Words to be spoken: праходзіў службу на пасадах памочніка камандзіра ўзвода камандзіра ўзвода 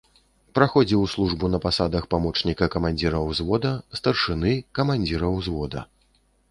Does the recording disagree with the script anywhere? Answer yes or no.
yes